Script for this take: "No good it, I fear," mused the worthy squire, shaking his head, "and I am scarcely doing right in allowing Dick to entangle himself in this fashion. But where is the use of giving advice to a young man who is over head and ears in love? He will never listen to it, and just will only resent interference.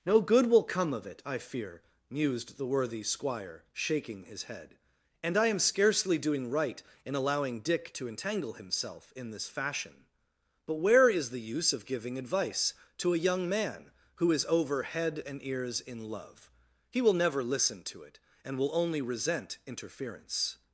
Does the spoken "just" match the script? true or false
false